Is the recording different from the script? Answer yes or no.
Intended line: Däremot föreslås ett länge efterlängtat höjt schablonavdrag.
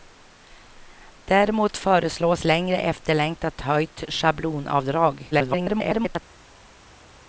yes